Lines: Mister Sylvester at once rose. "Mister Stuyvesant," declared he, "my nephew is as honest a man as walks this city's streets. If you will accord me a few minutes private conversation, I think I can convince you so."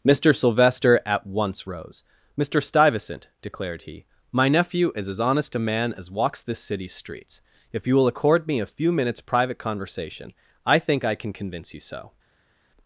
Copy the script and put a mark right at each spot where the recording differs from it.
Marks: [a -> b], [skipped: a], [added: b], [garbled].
Mister Sylvester at once rose. "Mister Stuyvesant," declared he, "my nephew is as honest a man as walks this city's streets. If you will accord me a few minutes private conversation, I think I can convince you so."